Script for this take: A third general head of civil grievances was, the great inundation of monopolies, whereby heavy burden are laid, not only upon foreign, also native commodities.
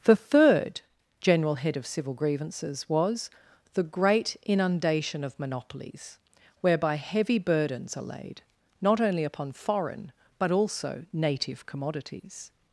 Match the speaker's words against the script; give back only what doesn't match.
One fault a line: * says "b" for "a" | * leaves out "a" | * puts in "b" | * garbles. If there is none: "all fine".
* says "The" for "A"
* says "burdens" for "burden"
* puts in "but"